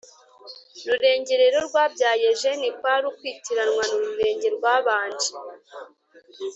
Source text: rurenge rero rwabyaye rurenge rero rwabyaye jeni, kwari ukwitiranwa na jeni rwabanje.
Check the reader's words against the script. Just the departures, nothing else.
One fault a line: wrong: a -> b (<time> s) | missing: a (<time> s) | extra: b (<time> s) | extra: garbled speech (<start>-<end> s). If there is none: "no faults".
missing: rurenge rero rwabyaye (2.3 s)
wrong: jeni -> rurenge (4.0 s)